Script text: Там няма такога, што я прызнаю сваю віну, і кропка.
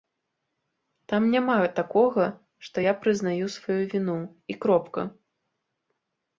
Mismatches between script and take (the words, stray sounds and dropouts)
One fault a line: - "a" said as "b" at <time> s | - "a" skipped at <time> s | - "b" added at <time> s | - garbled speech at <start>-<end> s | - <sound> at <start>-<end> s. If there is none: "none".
none